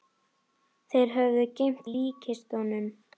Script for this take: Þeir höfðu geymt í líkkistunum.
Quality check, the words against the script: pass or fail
pass